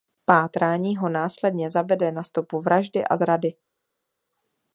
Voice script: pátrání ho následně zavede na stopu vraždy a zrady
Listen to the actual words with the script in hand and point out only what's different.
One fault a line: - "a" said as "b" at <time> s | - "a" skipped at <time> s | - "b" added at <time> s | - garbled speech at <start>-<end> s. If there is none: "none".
none